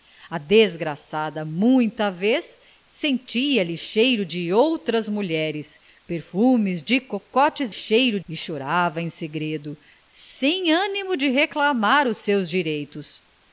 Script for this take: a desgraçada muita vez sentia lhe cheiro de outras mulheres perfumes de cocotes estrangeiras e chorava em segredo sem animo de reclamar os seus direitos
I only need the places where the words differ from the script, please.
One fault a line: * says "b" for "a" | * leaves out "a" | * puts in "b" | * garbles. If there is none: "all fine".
* says "cheiro" for "estrangeiras"